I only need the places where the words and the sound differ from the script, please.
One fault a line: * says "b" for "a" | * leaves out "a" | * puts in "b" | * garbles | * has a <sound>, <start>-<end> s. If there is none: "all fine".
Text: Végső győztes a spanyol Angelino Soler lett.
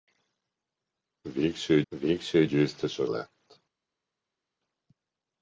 * puts in "végső"
* leaves out "spanyol Angelino Soler"